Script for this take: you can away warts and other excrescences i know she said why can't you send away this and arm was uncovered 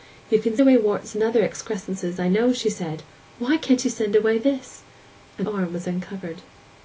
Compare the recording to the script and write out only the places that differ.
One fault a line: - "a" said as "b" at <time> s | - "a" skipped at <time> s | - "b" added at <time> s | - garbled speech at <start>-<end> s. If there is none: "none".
none